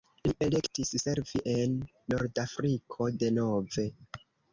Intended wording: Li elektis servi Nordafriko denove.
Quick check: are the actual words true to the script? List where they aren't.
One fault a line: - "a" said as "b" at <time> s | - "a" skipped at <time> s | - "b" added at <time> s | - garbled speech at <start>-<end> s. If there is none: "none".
- "en" added at 1.5 s